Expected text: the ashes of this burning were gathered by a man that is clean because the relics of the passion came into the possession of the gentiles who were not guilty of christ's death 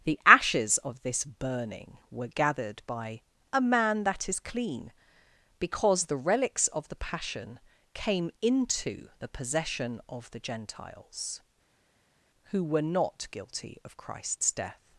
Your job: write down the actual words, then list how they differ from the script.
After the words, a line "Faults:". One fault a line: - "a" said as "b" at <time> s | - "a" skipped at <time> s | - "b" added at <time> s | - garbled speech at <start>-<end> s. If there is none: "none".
the ashes of this burning were gathered by a man that is clean because the relics of the passion came into the possession of the gentiles who were not guilty of christ's death
Faults:
none